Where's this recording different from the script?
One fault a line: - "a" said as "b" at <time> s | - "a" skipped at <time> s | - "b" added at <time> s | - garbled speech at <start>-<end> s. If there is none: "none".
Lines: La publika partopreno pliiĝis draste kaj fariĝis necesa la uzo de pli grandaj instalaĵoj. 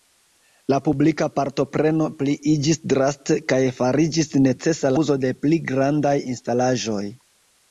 - "la" skipped at 4.9 s